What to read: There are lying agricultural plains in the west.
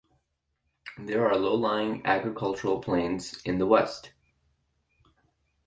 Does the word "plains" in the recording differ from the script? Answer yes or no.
no